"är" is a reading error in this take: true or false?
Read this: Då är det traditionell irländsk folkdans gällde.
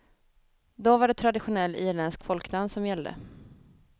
true